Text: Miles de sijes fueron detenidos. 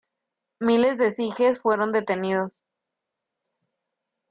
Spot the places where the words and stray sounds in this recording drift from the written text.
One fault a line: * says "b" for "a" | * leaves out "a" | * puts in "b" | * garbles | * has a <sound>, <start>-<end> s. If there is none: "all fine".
all fine